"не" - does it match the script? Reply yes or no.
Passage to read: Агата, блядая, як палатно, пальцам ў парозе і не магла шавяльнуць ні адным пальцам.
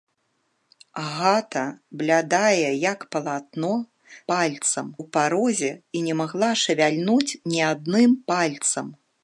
yes